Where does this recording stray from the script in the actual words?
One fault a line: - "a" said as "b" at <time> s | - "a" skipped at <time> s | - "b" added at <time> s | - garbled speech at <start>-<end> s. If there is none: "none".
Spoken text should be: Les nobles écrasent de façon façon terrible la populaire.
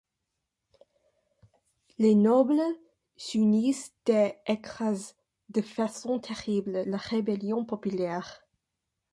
- "s'unissent et" added at 3.2 s
- "façon" skipped at 6.2 s
- "rébellion" added at 7.0 s